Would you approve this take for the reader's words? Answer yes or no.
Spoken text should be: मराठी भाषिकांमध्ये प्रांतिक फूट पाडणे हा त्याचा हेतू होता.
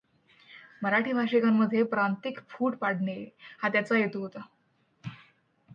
yes